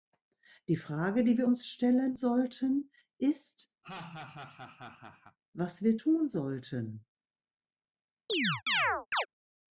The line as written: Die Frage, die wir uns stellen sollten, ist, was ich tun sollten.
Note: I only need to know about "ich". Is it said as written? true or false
false